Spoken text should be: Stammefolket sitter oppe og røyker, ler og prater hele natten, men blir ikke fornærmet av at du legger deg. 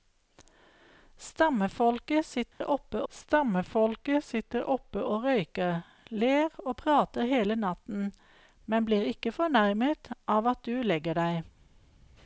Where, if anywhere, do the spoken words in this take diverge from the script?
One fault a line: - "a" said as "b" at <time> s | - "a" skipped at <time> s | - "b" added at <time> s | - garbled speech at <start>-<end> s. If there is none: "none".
- "stammefolket sitter oppe" added at 3.1 s